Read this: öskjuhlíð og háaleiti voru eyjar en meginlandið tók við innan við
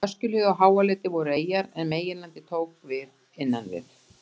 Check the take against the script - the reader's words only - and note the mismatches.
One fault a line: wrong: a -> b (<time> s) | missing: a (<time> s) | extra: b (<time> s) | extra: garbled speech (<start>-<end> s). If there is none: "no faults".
no faults